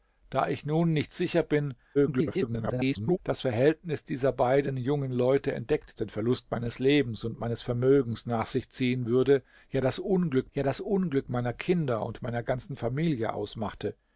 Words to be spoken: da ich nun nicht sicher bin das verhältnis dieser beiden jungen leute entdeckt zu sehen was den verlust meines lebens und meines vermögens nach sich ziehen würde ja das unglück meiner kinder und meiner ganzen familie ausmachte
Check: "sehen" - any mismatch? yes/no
yes